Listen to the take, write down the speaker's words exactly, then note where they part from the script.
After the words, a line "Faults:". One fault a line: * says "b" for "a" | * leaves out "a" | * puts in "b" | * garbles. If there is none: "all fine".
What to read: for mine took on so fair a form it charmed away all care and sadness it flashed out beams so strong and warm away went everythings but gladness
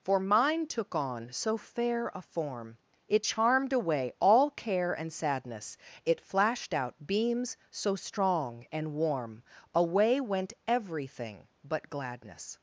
for mine took on so fair a form it charmed away all care and sadness it flashed out beams so strong and warm away went everything but gladness
Faults:
* says "everything" for "everythings"